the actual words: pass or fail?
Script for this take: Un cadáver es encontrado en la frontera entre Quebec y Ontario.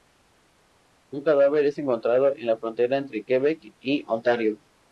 pass